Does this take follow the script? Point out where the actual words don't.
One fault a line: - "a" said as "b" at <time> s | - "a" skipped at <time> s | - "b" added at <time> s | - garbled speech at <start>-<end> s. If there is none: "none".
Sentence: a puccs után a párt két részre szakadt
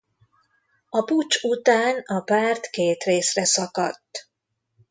none